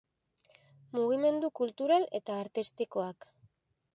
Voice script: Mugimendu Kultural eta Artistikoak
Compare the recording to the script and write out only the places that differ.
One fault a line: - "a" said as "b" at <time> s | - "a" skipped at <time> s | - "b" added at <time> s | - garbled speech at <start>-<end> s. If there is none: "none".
none